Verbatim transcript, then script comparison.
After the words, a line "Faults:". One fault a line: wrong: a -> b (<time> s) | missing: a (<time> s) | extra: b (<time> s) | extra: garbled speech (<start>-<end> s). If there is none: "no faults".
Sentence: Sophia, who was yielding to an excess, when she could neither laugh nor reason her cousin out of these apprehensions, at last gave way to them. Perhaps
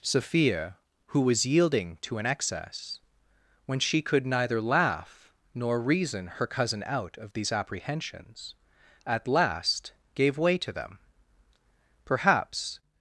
Sophia, who was yielding to an excess, when she could neither laugh nor reason her cousin out of these apprehensions, at last gave way to them. Perhaps
Faults:
no faults